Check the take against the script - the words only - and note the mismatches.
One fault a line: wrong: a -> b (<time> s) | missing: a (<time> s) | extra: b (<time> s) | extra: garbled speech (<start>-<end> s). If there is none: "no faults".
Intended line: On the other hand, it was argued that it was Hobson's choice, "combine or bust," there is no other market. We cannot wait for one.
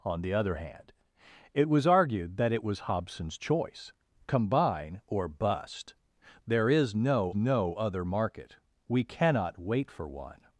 extra: no (7.3 s)